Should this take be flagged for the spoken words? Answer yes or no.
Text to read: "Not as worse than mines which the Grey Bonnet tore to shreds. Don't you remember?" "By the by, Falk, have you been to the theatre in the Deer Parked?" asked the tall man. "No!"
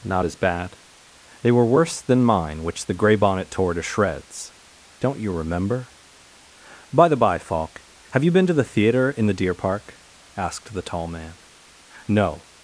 yes